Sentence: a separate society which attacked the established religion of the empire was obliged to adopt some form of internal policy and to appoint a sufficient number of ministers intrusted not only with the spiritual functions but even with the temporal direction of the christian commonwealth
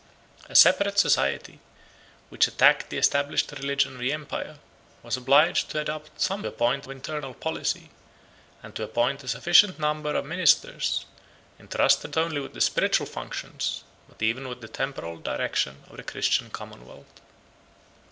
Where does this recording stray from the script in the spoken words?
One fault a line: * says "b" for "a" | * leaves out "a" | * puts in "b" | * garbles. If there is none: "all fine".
* says "appoint" for "form"
* leaves out "not"